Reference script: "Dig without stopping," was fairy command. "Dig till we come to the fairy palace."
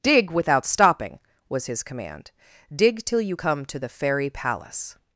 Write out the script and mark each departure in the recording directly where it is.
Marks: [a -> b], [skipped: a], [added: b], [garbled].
"Dig without stopping," was [fairy -> his] command. "Dig till [we -> you] come to the fairy palace."